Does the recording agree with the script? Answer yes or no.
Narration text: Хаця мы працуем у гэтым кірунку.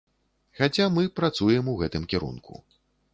yes